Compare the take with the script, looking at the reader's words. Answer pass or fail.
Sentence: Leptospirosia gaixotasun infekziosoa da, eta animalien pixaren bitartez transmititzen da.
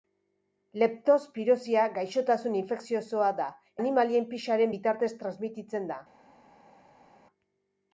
fail